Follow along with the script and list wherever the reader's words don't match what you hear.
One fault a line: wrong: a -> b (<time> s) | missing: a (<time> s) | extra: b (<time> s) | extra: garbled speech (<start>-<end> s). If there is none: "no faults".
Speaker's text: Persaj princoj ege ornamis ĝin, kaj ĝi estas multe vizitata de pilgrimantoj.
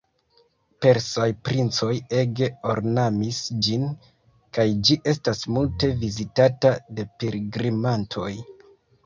no faults